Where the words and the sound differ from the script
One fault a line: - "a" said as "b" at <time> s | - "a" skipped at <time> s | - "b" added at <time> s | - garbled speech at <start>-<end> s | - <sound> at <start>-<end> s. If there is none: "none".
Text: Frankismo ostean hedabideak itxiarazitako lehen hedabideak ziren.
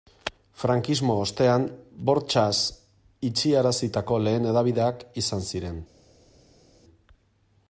- "hedabideak" said as "bortxaz" at 2.1 s
- "izan" added at 5.2 s